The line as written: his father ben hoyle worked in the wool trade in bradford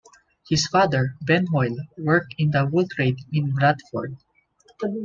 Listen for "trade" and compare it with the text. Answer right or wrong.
right